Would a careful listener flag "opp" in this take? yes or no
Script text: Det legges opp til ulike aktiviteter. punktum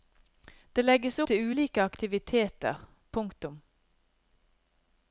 yes